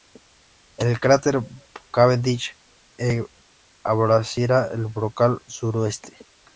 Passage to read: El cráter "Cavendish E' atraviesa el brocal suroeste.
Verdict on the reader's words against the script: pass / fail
pass